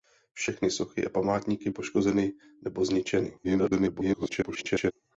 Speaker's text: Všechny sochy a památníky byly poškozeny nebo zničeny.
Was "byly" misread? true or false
true